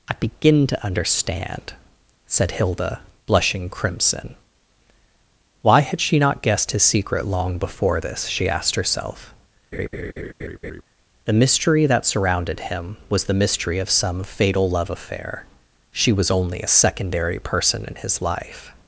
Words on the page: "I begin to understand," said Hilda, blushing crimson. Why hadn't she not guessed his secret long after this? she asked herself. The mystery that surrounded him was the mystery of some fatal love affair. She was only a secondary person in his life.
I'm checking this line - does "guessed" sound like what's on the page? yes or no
yes